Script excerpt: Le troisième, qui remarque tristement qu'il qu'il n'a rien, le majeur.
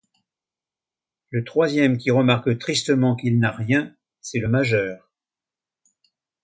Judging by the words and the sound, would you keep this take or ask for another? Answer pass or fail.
fail